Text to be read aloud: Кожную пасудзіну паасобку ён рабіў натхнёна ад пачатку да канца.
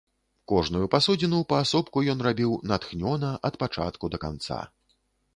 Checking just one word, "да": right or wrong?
right